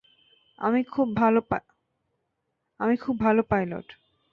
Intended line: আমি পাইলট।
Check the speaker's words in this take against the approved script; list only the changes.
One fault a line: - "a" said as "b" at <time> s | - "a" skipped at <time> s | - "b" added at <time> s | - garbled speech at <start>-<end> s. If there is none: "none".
- "খুব ভালো" added at 3.0 s